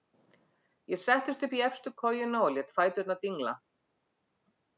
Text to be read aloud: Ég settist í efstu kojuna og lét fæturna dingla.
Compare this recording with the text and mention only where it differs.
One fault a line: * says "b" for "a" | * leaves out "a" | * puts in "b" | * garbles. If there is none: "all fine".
* puts in "upp"